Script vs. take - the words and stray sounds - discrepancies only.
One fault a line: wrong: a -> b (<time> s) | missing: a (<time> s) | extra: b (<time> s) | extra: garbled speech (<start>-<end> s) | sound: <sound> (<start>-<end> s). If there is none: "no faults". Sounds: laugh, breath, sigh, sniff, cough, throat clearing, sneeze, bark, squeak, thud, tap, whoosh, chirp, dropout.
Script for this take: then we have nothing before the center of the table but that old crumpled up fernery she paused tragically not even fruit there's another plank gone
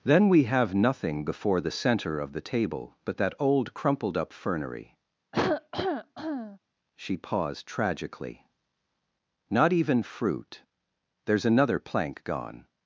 sound: cough (5.3-6.6 s)